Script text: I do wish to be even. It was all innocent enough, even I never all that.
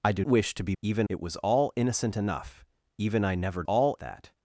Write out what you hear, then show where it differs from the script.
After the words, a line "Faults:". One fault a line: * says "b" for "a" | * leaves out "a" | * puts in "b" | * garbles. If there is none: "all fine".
I do wish to be even. It was all innocent enough, even I never all that.
Faults:
all fine